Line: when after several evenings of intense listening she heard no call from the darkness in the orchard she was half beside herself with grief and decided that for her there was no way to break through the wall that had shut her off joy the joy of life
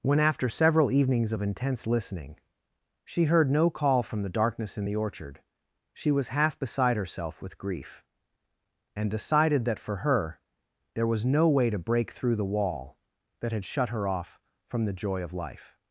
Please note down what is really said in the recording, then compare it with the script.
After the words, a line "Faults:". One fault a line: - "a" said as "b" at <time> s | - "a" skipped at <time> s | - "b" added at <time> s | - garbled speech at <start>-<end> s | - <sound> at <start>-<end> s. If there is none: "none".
when after several evenings of intense listening she heard no call from the darkness in the orchard she was half beside herself with grief and decided that for her there was no way to break through the wall that had shut her off from the joy of life
Faults:
- "joy" said as "from" at 14.7 s